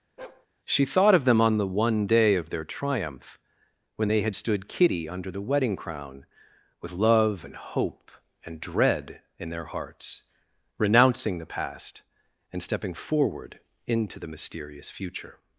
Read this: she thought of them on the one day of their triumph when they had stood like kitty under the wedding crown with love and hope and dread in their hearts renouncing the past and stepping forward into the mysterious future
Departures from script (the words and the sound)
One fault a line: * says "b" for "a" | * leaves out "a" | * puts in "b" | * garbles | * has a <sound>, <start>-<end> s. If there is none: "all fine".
* has a bark, 0.2-0.5 s
* leaves out "like"